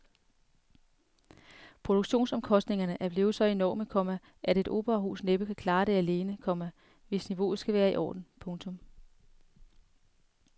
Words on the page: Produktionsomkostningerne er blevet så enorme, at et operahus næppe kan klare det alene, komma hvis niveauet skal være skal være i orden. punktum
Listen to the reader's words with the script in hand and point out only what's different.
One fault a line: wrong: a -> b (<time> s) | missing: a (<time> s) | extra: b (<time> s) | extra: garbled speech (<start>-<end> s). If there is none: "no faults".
extra: komma (3.9 s)
missing: skal være (7.9 s)